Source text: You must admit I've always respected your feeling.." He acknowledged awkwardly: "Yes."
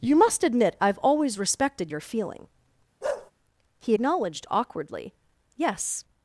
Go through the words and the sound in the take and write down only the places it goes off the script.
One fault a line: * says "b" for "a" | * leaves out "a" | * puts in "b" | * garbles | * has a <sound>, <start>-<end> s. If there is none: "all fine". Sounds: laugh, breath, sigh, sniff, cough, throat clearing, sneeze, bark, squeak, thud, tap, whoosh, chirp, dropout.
* has a bark, 3.0-3.3 s